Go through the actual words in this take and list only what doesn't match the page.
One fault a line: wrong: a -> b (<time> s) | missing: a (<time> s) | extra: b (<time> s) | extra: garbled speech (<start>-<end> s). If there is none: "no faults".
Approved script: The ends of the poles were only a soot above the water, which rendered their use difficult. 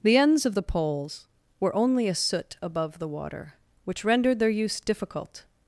no faults